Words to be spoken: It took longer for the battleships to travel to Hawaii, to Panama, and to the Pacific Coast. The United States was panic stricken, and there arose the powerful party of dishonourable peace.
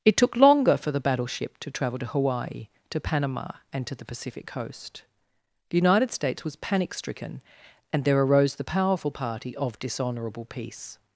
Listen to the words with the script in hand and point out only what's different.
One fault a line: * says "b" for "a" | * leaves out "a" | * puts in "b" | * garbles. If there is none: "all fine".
* says "battleship" for "battleships"